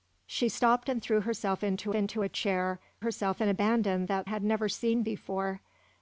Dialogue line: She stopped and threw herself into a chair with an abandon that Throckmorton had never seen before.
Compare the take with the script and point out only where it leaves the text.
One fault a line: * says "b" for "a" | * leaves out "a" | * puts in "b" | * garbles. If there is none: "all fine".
* puts in "into"
* says "herself" for "with"
* leaves out "Throckmorton"